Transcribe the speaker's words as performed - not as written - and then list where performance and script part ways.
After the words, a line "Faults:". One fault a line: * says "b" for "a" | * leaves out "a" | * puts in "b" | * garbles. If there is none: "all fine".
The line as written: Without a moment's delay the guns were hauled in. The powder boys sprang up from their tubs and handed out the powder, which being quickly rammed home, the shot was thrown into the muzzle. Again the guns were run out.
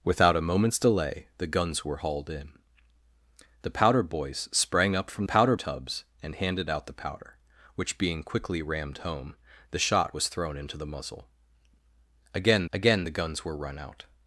Without a moment's delay the guns were hauled in. The powder boys sprang up from powder tubs and handed out the powder, which being quickly rammed home, the shot was thrown into the muzzle. Again again the guns were run out.
Faults:
* says "powder" for "their"
* puts in "again"